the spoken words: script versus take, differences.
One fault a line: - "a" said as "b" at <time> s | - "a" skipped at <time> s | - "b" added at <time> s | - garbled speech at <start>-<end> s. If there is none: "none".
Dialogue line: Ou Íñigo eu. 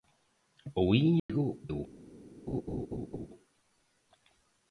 none